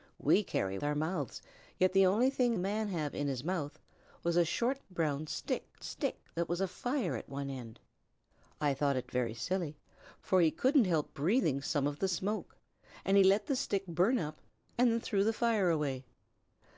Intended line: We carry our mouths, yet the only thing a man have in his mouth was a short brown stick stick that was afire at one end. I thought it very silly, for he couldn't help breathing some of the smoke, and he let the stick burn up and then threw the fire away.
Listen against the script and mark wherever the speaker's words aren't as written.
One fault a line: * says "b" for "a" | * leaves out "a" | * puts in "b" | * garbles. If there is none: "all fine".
all fine